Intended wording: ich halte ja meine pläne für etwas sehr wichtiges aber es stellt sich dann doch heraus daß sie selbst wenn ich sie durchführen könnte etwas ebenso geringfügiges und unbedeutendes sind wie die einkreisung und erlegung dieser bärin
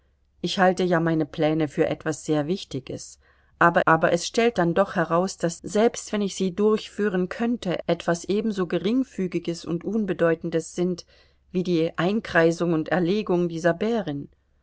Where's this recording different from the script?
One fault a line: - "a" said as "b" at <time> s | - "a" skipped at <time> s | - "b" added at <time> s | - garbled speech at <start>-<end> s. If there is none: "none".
- "aber" added at 3.9 s
- "sich" skipped at 4.6 s
- "sie" skipped at 5.6 s